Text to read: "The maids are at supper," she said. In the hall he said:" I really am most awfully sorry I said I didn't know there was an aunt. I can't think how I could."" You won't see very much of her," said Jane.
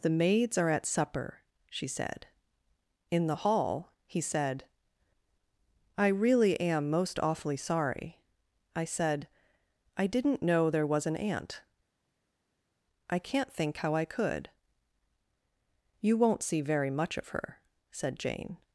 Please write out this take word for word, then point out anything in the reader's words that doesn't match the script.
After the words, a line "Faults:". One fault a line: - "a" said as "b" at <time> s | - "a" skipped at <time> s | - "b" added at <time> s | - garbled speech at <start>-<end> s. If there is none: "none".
"The maids are at supper," she said. In the hall he said:" I really am most awfully sorry I said I didn't know there was an aunt. I can't think how I could."" You won't see very much of her," said Jane.
Faults:
none